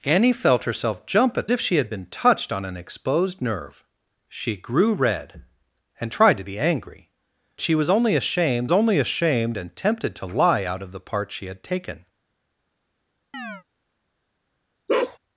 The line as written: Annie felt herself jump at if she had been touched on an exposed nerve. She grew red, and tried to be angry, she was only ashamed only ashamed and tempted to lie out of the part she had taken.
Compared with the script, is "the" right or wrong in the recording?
right